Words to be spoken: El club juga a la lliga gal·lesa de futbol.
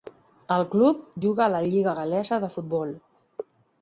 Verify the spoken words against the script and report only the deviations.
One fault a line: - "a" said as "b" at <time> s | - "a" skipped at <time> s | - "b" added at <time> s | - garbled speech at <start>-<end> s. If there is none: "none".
none